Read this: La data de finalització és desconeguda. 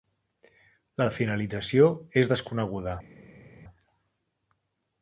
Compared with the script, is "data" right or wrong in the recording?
wrong